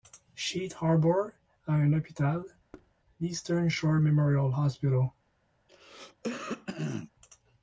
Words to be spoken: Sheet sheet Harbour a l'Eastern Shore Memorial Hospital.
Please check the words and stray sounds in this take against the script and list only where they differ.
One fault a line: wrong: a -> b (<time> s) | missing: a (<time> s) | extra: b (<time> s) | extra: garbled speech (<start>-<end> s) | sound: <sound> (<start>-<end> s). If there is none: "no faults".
missing: sheet (0.8 s)
extra: un hôpital (1.7 s)
sound: thud (2.7-2.9 s)
sound: throat clearing (5.7-7.1 s)